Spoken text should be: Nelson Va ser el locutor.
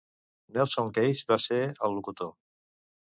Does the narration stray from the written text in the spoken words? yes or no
yes